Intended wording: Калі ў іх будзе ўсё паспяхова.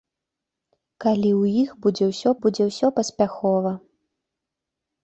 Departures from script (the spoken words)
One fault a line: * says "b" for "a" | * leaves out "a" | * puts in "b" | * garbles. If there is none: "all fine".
* puts in "будзе ўсё"